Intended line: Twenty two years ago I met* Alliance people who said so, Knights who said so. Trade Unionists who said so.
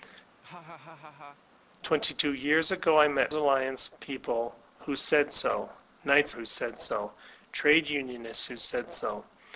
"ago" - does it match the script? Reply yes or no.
yes